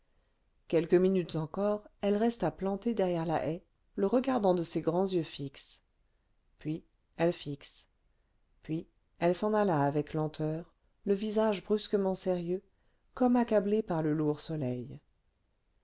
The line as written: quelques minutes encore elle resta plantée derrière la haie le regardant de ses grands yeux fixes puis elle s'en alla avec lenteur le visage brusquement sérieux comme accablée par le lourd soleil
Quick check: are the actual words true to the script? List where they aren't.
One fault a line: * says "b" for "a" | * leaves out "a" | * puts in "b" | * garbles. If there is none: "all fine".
* puts in "fixes puis elle"